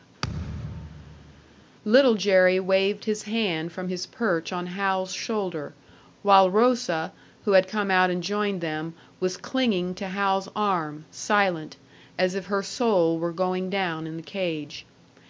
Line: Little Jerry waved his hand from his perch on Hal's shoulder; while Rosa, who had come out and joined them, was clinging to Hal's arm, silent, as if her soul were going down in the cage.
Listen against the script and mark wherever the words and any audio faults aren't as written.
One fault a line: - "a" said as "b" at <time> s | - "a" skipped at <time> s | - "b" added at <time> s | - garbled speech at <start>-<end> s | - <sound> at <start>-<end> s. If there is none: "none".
- thud at 0.2-1.7 s